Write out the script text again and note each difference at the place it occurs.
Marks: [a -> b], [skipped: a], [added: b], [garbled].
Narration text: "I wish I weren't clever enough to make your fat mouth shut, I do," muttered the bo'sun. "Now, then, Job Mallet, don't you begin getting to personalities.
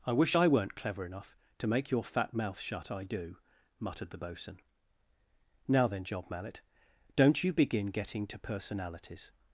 "I wish I weren't clever enough to make your fat mouth shut, I do," muttered the bo'sun. "Now, then, Job Mallet, don't you begin getting to personalities.